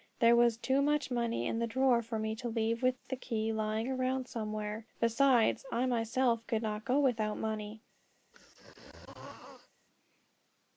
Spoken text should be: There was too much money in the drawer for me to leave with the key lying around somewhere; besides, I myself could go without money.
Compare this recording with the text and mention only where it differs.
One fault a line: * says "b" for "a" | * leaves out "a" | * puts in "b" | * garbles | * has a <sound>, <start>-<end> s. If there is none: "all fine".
* puts in "not"
* has a throat clearing, 8.3-9.7 s